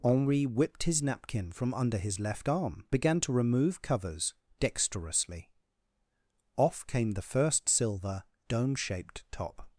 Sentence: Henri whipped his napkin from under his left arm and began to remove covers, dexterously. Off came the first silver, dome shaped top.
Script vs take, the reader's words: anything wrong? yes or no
yes